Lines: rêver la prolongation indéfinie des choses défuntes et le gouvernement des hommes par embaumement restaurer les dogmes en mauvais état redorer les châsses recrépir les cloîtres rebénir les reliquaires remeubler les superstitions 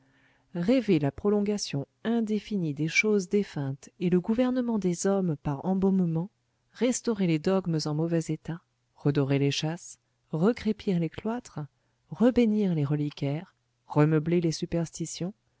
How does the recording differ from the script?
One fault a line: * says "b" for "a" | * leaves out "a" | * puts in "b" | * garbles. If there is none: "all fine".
all fine